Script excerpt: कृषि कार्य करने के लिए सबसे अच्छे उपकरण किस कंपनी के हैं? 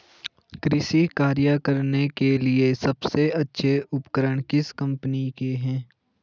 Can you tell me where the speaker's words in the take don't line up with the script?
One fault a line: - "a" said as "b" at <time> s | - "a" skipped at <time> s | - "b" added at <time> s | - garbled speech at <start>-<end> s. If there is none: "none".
none